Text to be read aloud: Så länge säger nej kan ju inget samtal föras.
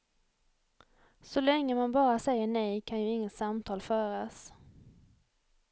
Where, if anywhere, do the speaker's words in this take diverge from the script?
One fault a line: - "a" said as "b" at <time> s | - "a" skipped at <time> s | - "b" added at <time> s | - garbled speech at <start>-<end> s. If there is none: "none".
- "man bara" added at 1.8 s